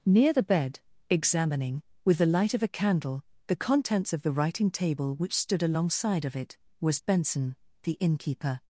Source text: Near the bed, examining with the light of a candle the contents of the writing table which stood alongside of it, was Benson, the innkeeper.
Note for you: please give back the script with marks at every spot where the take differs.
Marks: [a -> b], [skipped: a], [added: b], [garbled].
Near the bed, examining with the light of a candle the contents of the writing table which stood alongside of it, was Benson, the innkeeper.